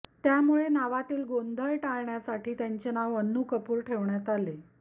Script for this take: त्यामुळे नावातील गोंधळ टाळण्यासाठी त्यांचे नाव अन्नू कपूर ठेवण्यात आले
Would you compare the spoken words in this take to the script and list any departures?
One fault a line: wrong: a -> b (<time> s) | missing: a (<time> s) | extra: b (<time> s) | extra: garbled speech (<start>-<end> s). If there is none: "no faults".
no faults